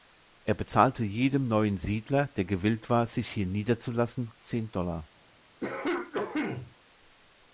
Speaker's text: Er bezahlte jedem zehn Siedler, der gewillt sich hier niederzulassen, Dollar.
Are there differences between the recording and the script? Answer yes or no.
yes